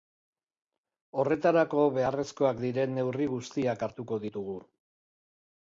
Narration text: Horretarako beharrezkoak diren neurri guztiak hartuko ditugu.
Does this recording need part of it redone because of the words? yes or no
no